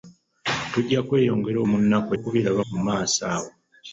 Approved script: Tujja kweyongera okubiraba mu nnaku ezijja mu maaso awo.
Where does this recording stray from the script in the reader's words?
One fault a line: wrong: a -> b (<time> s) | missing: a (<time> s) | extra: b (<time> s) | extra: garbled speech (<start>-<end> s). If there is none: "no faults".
missing: okubiraba (1.6 s)
wrong: ezijja -> okubiraba (2.1 s)